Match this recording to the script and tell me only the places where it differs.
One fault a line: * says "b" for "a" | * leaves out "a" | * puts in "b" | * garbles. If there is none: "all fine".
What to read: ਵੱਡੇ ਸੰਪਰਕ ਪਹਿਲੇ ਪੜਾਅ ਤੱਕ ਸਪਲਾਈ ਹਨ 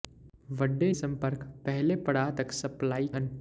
all fine